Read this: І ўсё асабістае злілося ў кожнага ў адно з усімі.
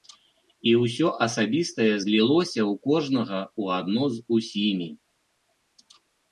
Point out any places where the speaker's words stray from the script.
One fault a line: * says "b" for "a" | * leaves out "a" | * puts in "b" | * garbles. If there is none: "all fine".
all fine